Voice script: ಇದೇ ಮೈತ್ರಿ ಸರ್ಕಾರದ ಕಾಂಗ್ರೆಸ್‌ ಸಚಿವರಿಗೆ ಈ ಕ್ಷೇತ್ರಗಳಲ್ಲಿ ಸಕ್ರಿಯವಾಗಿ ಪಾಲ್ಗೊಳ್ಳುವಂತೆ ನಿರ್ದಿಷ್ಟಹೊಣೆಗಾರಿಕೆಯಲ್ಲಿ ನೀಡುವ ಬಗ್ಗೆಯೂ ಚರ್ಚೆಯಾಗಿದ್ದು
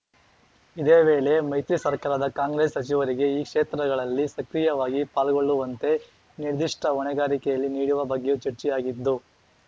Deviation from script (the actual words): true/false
true